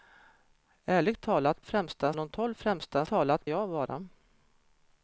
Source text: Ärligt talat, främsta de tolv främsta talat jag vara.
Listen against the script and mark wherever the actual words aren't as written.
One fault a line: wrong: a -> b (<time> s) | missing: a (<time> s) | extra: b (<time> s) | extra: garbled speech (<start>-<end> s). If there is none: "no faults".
no faults